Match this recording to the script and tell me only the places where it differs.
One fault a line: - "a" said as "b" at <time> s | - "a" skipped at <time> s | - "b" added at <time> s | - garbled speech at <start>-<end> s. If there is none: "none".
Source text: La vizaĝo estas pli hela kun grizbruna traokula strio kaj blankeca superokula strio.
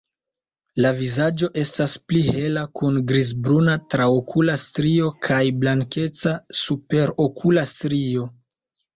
none